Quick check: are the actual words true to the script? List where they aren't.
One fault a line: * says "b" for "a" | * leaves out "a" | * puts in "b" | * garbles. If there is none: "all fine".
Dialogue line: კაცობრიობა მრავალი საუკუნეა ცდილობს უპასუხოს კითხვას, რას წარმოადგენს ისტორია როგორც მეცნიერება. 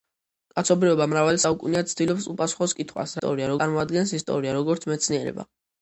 * says "ისტორია" for "რას"